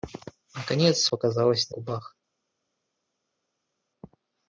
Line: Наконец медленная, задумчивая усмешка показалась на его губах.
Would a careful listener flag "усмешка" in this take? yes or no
yes